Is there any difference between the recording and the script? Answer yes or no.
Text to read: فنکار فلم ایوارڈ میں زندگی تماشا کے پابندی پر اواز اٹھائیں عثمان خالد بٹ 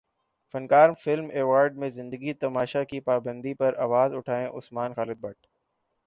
yes